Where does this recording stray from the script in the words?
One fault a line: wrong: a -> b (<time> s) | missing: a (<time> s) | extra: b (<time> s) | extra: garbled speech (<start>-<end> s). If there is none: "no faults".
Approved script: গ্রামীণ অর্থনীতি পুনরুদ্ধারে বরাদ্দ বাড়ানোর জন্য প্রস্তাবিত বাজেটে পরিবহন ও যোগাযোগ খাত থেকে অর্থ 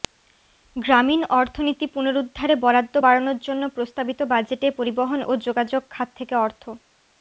no faults